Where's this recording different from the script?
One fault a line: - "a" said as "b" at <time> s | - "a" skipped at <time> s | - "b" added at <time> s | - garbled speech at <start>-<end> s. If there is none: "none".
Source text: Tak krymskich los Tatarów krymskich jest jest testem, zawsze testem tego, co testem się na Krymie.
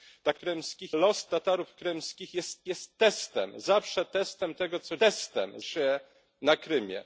none